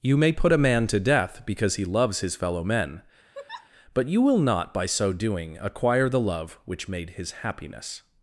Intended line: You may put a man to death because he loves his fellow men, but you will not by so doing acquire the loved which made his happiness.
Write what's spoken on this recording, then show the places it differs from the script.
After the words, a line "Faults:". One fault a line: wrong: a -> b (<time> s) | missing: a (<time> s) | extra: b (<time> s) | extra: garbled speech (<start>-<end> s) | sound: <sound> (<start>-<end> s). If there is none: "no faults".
You may put a man to death because he loves his fellow men, but you will not by so doing acquire the love which made his happiness.
Faults:
sound: laugh (3.3-3.7 s)
wrong: loved -> love (6.2 s)